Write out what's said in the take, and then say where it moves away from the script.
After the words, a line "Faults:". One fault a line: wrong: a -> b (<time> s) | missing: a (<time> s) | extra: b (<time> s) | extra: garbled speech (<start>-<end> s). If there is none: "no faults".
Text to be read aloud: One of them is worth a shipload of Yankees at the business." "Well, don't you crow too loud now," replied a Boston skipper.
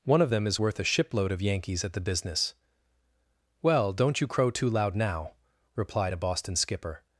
One of them is worth a shipload of Yankees at the business." "Well, don't you crow too loud now," replied a Boston skipper.
Faults:
no faults